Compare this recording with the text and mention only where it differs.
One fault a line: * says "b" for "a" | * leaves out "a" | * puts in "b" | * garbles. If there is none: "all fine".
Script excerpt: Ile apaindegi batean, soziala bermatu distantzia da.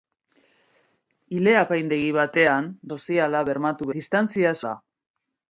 all fine